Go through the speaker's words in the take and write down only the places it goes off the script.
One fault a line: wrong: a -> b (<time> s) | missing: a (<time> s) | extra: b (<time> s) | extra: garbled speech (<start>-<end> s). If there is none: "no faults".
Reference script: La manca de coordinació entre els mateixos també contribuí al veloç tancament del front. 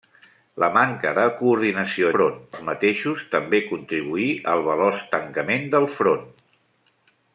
wrong: entre -> front (2.1 s)